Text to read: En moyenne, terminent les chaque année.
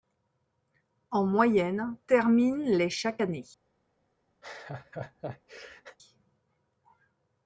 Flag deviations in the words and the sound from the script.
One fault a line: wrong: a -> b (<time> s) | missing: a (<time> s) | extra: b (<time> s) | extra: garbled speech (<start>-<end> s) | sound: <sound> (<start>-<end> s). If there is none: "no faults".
sound: laugh (4.4-6.0 s)